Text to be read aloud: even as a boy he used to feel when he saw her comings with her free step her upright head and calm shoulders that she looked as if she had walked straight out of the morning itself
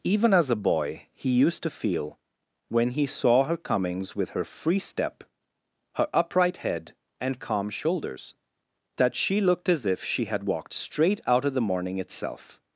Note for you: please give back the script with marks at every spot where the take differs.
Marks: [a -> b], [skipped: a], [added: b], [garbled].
even as a boy he used to feel when he saw her comings with her free step her upright head and calm shoulders that she looked as if she had walked straight out of the morning itself